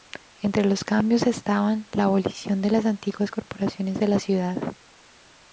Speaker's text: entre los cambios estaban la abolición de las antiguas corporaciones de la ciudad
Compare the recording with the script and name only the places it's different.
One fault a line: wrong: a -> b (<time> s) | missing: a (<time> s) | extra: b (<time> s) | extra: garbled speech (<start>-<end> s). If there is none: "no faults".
no faults